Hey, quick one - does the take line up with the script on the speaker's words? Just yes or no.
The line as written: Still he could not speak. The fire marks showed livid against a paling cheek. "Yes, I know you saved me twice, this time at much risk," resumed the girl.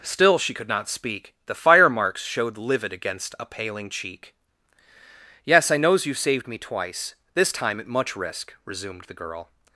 no